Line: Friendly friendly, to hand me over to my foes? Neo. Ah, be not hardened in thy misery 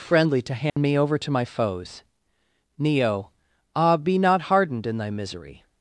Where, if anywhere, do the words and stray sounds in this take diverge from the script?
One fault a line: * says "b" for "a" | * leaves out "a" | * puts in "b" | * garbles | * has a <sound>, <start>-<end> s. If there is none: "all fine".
* leaves out "friendly"
* has a dropout, 0.7-0.8 s